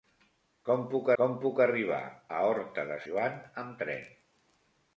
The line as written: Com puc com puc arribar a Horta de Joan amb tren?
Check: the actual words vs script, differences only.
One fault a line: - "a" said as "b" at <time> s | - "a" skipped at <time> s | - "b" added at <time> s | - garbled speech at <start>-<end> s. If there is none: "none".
none